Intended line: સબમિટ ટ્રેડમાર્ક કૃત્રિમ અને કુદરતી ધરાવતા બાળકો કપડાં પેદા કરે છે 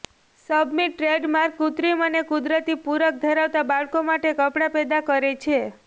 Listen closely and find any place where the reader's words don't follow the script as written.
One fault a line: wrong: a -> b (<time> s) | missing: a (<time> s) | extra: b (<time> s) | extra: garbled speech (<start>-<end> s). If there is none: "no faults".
extra: પૂરક (2.8 s)
extra: માટે (4.1 s)